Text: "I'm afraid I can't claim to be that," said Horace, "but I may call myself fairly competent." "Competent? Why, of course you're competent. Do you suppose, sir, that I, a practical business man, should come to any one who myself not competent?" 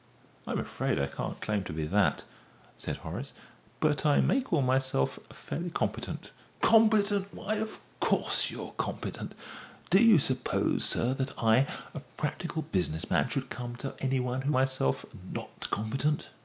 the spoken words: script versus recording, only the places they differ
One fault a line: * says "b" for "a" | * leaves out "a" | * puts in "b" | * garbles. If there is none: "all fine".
all fine